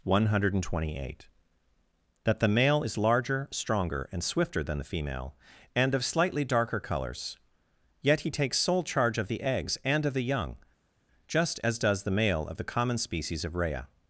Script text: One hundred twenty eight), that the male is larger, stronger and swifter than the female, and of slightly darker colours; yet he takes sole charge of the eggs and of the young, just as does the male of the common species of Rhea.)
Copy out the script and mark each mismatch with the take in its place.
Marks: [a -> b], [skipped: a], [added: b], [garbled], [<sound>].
One hundred twenty eight), that the male is larger, stronger and swifter than the female, and of slightly darker colours; yet he takes sole charge of the eggs and of the young, just as does the male of the common species of Rhea.)